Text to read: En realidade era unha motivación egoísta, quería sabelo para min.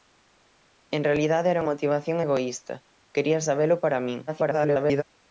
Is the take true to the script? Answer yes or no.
no